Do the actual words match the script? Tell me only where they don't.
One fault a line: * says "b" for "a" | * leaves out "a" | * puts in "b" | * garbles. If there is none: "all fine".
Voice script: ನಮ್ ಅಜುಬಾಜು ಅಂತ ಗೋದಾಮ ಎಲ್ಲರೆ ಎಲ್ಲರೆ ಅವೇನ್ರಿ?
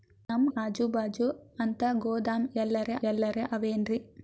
all fine